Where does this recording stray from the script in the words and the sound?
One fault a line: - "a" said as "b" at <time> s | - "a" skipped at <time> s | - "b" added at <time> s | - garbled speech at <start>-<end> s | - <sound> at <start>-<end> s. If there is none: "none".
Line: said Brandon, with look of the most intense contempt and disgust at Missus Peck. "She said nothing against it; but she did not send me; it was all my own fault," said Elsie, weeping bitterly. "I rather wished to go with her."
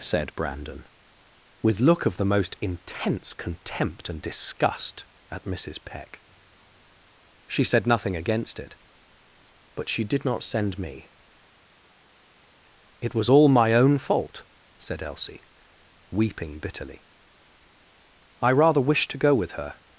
none